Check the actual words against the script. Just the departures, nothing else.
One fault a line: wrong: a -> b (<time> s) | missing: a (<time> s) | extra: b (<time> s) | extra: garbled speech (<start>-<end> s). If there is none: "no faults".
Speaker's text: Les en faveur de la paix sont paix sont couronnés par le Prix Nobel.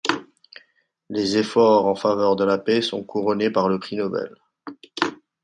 extra: efforts (1.4 s)
missing: paix sont (3.0 s)